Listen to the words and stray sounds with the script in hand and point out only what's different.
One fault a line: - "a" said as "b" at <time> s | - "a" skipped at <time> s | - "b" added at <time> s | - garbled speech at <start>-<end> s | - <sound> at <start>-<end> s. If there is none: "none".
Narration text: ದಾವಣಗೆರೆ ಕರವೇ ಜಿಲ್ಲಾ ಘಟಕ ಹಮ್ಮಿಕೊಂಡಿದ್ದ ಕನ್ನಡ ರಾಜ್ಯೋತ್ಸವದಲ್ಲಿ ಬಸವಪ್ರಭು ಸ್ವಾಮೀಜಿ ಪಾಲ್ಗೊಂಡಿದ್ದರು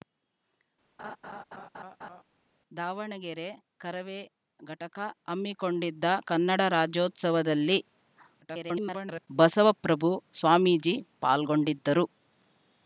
- laugh at 1.0-2.2 s
- "ಜಿಲ್ಲಾ" skipped at 4.2 s
- garbled speech at 8.4-9.3 s